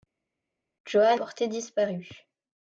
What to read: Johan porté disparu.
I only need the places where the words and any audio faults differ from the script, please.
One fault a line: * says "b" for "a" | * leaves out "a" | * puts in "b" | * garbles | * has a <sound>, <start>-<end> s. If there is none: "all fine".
all fine